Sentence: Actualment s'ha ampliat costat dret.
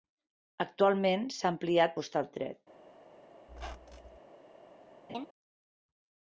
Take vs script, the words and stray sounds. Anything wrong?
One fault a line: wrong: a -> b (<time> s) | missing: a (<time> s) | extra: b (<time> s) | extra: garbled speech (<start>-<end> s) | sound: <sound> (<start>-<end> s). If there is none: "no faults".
sound: squeak (3.5-4.2 s)
sound: laugh (5.1-5.3 s)